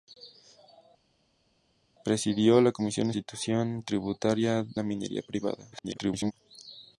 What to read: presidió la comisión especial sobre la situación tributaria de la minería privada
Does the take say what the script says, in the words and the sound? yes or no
no